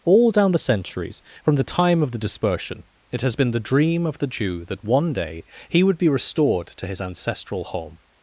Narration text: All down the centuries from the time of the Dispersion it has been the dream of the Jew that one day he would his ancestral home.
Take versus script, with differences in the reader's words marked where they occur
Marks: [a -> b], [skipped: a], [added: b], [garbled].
All down the centuries from the time of the Dispersion it has been the dream of the Jew that one day he would [added: be restored to] his ancestral home.